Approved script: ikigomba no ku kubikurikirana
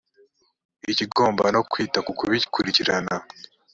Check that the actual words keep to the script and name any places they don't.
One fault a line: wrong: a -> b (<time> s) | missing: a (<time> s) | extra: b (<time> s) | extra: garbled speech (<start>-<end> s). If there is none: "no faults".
extra: kwita (1.7 s)